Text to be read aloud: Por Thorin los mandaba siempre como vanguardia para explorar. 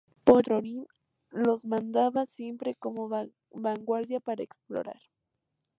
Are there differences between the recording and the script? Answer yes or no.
no